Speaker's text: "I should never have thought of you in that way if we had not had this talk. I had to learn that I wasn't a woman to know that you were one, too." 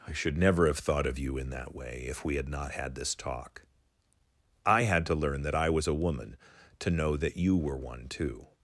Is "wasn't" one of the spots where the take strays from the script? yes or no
yes